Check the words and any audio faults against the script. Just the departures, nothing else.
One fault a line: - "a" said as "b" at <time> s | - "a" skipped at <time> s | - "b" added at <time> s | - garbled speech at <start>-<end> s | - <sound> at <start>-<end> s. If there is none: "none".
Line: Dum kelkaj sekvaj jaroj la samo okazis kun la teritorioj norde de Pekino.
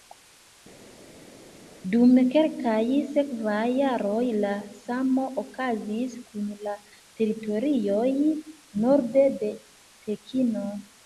none